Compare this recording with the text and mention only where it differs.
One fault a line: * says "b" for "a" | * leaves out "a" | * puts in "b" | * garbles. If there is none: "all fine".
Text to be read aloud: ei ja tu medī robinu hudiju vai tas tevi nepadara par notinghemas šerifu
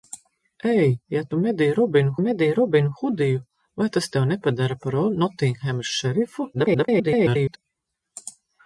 * puts in "medī robinu"
* garbles